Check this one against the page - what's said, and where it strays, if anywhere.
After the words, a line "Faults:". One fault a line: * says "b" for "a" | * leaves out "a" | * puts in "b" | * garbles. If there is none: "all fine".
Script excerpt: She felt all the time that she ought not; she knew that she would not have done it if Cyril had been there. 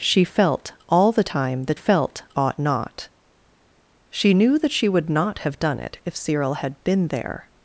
She felt all the time that felt ought not; she knew that she would not have done it if Cyril had been there.
Faults:
* says "felt" for "she"